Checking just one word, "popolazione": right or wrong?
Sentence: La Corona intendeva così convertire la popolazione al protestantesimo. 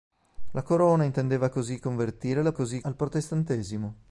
wrong